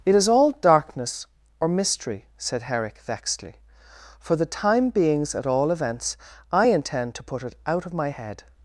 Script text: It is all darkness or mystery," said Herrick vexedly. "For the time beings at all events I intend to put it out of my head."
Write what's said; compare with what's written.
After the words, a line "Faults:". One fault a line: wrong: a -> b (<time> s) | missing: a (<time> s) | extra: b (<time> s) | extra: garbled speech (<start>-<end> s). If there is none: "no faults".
It is all darkness or mystery," said Herrick vexedly. "For the time beings at all events I intend to put it out of my head."
Faults:
no faults